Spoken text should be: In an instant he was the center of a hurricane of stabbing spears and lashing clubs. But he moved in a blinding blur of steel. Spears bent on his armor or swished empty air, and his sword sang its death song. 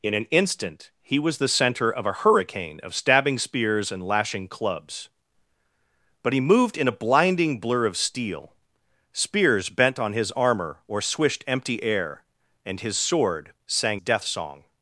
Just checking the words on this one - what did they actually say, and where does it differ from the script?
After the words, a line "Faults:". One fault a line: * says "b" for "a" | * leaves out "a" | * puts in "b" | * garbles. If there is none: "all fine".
In an instant he was the center of a hurricane of stabbing spears and lashing clubs. But he moved in a blinding blur of steel. Spears bent on his armor or swished empty air, and his sword sang death song.
Faults:
* leaves out "its"